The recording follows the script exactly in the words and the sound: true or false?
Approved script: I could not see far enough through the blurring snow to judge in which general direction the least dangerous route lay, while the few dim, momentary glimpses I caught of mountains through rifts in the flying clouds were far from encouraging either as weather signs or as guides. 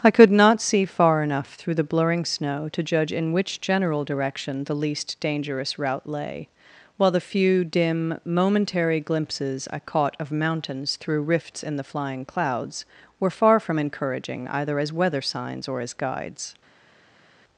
true